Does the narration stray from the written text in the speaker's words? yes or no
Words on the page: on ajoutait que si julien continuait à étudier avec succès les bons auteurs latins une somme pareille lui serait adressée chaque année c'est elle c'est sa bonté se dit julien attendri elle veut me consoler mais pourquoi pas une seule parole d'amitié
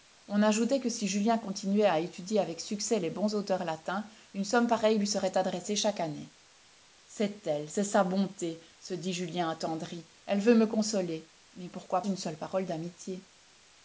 yes